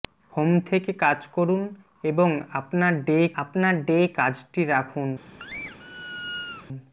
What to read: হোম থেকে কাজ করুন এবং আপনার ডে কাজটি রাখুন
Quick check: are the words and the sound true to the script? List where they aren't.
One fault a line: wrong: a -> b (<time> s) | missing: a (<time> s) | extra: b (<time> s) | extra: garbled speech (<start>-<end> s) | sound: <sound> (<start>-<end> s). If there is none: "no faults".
extra: আপনার ডে (3.4 s)
sound: squeak (5.4-6.7 s)